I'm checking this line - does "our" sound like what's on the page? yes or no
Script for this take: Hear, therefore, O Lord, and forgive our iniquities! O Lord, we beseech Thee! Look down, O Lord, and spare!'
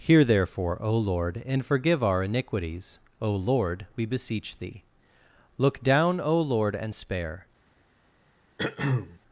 yes